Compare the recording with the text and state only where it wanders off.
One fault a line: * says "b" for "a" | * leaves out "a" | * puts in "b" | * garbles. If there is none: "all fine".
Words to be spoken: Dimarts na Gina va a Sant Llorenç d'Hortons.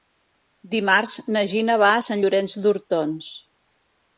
all fine